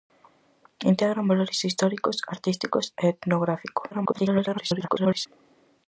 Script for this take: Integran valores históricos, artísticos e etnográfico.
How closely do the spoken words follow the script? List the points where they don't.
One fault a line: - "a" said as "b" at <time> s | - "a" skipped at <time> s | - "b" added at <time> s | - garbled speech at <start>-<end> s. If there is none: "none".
- garbled speech at 3.9-5.3 s